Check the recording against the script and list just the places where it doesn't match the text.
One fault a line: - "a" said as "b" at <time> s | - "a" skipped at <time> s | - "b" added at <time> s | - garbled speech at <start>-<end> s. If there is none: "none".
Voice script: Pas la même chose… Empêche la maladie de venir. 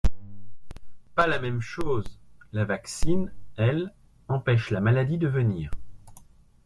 - "La vaccine elle" added at 2.5 s